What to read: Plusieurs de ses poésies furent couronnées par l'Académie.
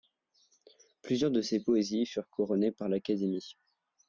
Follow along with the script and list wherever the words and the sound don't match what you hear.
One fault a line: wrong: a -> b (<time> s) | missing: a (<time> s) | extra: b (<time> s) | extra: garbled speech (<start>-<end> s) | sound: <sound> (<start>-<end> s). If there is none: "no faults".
no faults